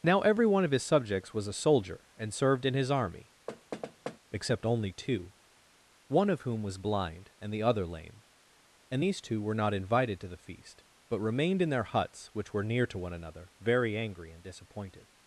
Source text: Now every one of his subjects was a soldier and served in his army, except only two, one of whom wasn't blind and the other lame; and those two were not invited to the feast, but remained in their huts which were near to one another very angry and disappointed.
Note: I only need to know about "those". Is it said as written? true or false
false